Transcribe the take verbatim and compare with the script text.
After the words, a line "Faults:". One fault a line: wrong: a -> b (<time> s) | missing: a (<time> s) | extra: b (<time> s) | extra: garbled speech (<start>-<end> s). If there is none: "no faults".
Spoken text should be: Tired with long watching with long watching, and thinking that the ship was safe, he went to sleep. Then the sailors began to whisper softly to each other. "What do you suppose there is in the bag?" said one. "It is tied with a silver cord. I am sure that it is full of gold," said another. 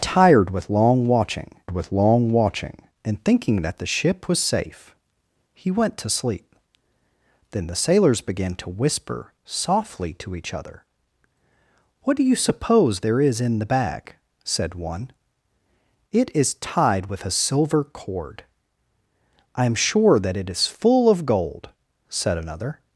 Tired with long watching with long watching, and thinking that the ship was safe, he went to sleep. Then the sailors began to whisper softly to each other. "What do you suppose there is in the bag?" said one. "It is tied with a silver cord. I am sure that it is full of gold," said another.
Faults:
no faults